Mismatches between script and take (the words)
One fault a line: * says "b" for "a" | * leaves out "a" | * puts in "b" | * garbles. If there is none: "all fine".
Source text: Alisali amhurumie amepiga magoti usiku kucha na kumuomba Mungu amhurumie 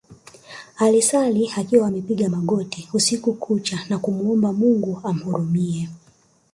* says "akiwa" for "amhurumie"